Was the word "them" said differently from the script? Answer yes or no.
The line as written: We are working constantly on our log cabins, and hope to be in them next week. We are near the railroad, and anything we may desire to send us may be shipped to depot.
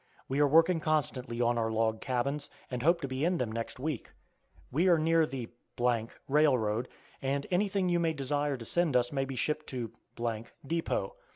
no